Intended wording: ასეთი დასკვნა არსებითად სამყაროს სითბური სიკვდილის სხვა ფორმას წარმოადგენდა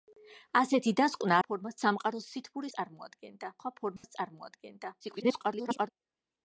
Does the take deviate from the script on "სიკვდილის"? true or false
true